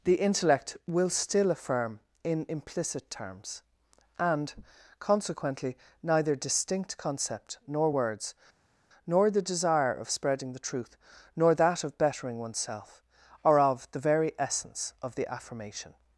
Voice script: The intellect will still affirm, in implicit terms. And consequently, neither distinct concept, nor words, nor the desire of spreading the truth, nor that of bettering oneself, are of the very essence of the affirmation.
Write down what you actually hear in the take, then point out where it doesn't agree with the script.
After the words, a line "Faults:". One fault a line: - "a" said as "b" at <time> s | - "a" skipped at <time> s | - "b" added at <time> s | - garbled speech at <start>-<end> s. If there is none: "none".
The intellect will still affirm, in implicit terms. And consequently, neither distinct concept, nor words, nor the desire of spreading the truth, nor that of bettering oneself, are of the very essence of the affirmation.
Faults:
none